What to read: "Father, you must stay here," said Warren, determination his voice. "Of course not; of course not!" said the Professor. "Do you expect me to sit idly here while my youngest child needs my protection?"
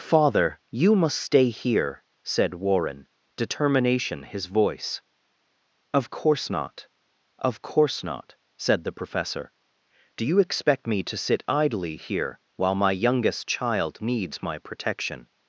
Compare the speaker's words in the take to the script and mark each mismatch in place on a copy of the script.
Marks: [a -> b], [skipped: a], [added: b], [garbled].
"Father, you must stay here," said Warren, determination his voice. "Of course not; of course not!" said the Professor. "Do you expect me to sit idly here while my youngest child needs my protection?"